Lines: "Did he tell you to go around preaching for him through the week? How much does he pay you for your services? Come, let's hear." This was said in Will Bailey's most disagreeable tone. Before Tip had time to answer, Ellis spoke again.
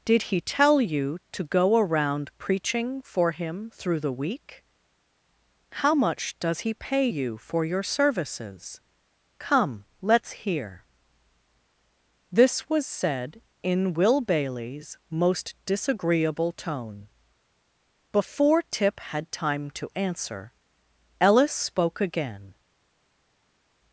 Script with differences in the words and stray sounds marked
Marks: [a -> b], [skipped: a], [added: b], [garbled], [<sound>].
"Did he tell you to go around preaching for him through the week? How much does he pay you for your services? Come, let's hear." This was said in Will Bailey's most disagreeable tone. Before Tip had time to answer, Ellis spoke again.